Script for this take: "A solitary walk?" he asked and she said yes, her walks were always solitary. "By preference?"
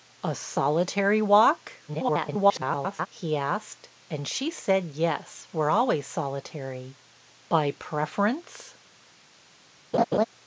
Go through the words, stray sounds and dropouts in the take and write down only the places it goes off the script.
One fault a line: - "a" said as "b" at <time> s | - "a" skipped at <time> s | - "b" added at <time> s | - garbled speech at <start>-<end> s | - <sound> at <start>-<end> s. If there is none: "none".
- garbled speech at 1.9-3.1 s
- "her walks" skipped at 5.5 s
- laugh at 9.9-10.2 s